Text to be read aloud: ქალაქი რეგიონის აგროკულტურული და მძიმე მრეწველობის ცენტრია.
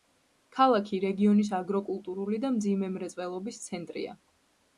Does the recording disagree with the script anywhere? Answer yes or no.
no